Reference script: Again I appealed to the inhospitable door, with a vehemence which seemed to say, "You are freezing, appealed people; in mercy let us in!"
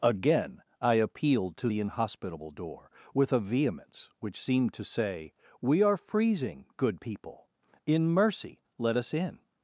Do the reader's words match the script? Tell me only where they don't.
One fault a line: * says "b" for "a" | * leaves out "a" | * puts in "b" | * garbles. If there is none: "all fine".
* says "We" for "You"
* says "good" for "appealed"